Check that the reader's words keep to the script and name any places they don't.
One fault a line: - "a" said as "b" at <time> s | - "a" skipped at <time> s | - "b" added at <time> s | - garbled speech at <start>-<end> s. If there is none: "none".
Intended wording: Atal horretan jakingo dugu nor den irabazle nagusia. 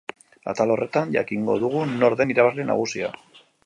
none